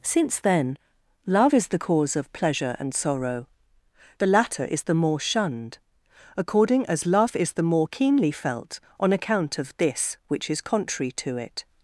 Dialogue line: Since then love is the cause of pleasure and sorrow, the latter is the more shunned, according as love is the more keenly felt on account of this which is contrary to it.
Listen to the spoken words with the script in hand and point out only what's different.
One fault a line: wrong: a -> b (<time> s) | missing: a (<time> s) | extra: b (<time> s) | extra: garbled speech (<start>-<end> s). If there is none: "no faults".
no faults